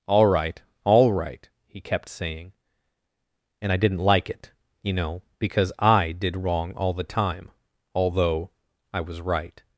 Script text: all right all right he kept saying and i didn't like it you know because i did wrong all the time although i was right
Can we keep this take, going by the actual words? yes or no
yes